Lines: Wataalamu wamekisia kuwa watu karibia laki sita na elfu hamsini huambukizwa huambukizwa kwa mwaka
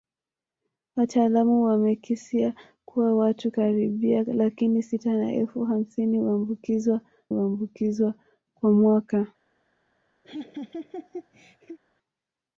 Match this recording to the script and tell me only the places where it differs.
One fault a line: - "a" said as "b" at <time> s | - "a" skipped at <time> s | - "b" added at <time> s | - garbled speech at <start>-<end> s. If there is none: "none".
none